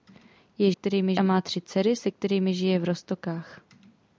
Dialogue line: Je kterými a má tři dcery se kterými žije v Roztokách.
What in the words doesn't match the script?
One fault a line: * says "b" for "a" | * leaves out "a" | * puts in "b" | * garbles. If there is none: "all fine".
all fine